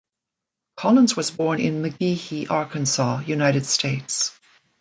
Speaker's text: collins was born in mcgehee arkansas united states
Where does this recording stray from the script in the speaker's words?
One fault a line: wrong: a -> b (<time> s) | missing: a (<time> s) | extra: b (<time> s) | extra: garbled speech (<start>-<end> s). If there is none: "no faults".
no faults